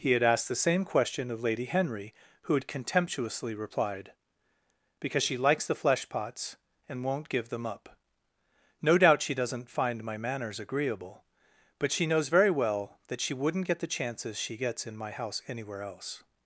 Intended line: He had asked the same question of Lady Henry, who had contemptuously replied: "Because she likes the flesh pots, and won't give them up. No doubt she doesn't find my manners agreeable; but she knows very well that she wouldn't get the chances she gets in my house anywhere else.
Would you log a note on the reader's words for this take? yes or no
no